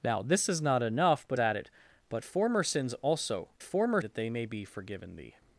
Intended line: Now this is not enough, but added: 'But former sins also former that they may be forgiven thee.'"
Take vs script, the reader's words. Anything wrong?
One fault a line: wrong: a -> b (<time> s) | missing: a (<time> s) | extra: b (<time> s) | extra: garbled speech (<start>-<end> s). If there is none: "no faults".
no faults